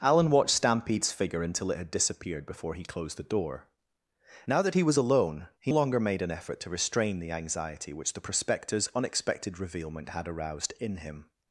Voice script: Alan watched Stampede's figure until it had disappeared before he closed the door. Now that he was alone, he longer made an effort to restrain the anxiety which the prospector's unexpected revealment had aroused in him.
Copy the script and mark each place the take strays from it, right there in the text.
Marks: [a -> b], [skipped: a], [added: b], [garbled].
Alan watched Stampede's figure until it had disappeared before he closed the door. Now that he was alone, he longer made an effort to restrain the anxiety which the prospector's unexpected revealment had aroused in him.